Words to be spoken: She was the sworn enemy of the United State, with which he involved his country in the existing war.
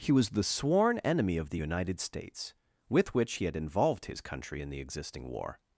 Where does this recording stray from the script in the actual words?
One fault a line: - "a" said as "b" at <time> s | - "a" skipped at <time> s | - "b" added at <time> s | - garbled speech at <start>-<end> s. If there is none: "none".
- "She" said as "He" at 0.0 s
- "State" said as "States" at 2.0 s
- "had" added at 3.4 s